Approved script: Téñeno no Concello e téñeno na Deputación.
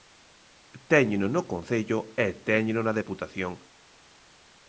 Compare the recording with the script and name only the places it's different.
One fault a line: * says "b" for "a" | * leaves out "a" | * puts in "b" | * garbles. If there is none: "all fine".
all fine